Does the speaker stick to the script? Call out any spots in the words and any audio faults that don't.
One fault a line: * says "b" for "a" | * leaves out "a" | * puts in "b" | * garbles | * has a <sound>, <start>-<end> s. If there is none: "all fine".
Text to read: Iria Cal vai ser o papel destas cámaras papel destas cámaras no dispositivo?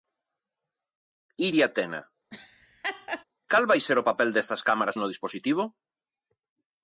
* puts in "Tena"
* has a laugh, 2.3-3.2 s
* leaves out "papel destas cámaras"